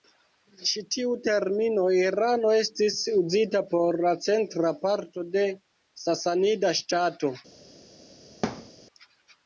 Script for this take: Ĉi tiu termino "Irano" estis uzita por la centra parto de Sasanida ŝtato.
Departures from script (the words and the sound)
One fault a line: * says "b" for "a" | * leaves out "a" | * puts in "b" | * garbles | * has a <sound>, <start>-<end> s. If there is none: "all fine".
* has a thud, 8.4-8.7 s